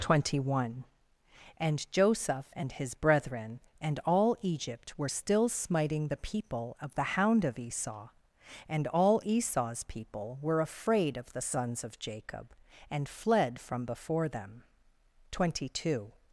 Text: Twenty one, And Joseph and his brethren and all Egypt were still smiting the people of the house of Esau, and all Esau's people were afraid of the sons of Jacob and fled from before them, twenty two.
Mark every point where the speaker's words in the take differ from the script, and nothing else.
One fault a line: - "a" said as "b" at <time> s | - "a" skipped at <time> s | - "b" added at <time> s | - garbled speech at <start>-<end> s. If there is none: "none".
- "house" said as "hound" at 7.1 s